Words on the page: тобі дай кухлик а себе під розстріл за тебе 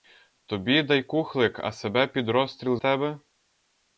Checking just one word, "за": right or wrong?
wrong